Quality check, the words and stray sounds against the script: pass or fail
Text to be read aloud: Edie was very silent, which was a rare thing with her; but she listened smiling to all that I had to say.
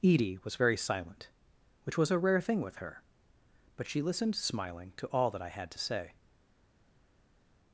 pass